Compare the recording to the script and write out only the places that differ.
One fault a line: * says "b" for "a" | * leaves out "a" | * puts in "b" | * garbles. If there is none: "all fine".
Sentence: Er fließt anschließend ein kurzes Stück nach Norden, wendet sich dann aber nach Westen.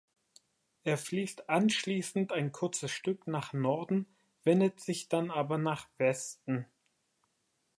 all fine